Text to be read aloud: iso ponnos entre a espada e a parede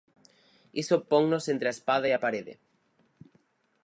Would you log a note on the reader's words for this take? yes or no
no